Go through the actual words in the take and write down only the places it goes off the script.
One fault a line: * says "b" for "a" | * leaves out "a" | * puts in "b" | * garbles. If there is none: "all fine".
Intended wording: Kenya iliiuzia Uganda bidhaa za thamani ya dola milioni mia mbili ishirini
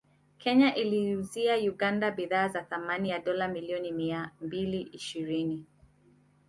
all fine